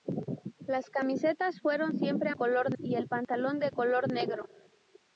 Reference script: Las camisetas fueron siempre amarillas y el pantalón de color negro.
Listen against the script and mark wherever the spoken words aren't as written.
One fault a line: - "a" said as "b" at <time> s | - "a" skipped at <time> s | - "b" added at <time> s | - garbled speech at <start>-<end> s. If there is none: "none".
- "amarillas" said as "color" at 2.3 s